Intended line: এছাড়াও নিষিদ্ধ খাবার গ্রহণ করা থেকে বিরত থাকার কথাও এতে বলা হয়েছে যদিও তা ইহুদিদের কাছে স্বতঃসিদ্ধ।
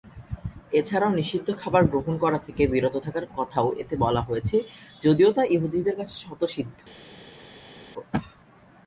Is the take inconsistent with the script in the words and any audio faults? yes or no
no